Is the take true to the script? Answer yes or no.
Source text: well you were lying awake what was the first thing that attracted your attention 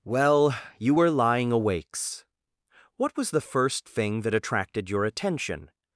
no